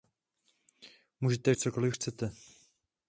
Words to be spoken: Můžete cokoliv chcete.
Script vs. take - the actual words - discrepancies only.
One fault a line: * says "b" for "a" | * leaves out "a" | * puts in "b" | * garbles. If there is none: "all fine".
all fine